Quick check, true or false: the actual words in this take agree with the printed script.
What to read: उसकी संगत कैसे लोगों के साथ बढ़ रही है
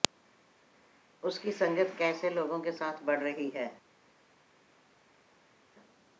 true